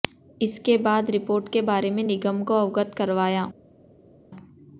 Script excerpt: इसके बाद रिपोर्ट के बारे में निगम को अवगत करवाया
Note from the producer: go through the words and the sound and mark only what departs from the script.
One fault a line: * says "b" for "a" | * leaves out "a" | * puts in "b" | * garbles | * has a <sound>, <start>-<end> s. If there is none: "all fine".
all fine